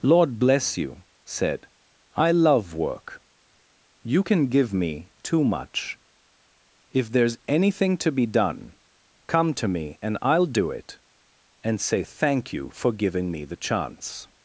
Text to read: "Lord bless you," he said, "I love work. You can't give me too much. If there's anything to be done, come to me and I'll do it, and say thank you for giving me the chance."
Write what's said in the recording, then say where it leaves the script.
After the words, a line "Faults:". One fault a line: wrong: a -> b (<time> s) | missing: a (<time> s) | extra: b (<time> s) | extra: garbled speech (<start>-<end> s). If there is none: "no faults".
"Lord bless you," said, "I love work. You can give me too much. If there's anything to be done, come to me and I'll do it, and say thank you for giving me the chance."
Faults:
missing: he (1.0 s)
wrong: can't -> can (4.2 s)